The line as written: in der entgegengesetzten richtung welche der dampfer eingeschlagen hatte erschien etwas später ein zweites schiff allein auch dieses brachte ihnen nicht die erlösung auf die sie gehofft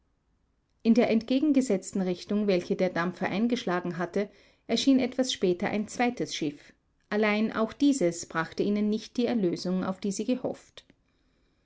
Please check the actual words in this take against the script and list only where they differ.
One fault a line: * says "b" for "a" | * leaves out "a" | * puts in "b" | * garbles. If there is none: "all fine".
all fine